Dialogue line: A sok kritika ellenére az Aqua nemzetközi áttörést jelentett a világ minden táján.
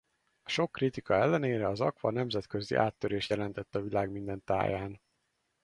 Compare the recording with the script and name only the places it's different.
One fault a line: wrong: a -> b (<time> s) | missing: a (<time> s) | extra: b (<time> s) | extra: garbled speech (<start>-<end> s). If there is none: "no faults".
no faults